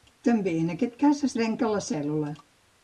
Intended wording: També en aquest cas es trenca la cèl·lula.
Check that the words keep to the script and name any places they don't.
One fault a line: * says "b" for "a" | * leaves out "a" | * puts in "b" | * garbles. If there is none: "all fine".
all fine